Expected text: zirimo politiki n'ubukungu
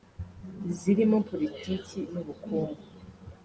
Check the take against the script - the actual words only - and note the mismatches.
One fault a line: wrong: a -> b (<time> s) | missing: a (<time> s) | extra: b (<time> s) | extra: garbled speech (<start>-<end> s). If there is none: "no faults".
no faults